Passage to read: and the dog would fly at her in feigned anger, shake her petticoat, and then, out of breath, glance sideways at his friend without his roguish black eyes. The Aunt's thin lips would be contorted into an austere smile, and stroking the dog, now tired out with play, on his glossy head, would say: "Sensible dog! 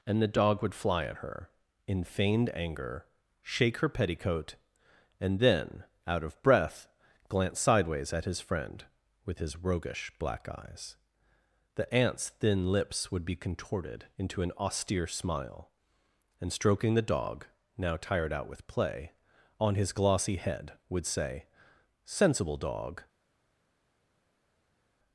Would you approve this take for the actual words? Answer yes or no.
no